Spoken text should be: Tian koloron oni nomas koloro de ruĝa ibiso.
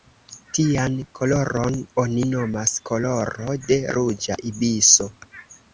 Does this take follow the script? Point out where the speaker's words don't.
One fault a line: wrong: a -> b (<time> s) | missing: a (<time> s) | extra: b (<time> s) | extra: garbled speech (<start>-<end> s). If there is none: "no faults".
no faults